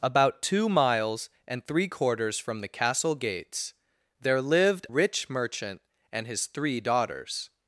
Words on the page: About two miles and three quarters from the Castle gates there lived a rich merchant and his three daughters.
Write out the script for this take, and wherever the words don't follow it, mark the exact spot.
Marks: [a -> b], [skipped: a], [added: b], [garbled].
About two miles and three quarters from the Castle gates there lived [skipped: a] rich merchant and his three daughters.